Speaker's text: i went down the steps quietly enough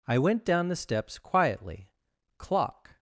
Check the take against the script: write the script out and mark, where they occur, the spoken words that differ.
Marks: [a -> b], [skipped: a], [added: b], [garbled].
i went down the steps quietly [enough -> clock]